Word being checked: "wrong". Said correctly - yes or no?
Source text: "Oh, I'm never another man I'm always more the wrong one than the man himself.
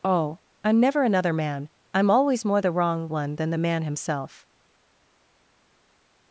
yes